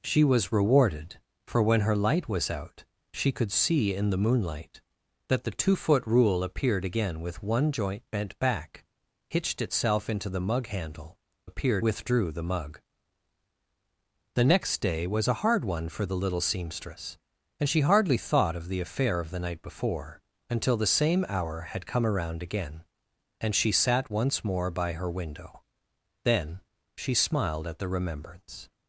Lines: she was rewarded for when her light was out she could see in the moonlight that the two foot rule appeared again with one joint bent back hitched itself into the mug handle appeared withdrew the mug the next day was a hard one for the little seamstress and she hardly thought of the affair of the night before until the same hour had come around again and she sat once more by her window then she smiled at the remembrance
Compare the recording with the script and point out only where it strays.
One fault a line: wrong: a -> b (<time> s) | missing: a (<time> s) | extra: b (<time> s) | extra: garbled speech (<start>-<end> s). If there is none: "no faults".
no faults